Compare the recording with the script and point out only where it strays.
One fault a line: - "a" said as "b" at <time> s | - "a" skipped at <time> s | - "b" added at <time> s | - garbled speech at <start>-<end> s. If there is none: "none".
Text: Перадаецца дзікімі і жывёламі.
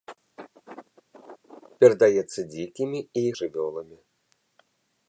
none